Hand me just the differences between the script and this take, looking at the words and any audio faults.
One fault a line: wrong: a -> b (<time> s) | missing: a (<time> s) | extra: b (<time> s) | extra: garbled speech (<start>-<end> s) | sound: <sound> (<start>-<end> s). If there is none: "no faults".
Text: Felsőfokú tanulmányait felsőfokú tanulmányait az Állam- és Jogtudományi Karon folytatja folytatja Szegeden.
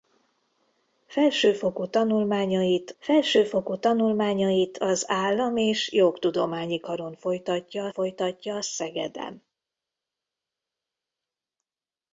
no faults